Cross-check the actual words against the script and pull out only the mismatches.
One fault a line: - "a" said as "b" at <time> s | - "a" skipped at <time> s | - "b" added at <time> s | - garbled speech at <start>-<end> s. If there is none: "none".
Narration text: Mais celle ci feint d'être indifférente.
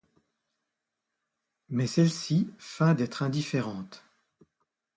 none